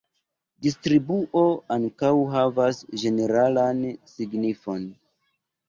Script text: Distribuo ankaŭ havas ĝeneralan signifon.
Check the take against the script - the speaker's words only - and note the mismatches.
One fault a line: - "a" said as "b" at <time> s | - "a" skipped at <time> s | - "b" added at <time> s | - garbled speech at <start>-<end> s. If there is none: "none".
none